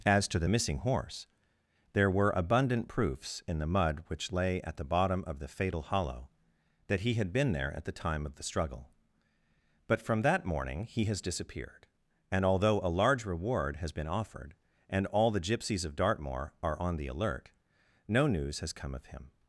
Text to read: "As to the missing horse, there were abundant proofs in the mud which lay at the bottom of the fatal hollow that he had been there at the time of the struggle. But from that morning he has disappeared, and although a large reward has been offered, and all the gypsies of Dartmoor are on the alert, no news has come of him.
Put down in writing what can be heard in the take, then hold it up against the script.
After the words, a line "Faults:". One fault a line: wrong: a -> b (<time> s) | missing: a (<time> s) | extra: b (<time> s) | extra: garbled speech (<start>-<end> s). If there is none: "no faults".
"As to the missing horse, there were abundant proofs in the mud which lay at the bottom of the fatal hollow that he had been there at the time of the struggle. But from that morning he has disappeared, and although a large reward has been offered, and all the gypsies of Dartmoor are on the alert, no news has come of him.
Faults:
no faults